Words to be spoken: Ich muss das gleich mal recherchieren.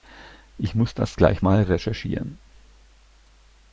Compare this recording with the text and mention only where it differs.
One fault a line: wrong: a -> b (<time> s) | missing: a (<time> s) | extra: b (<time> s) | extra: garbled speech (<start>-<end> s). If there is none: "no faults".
no faults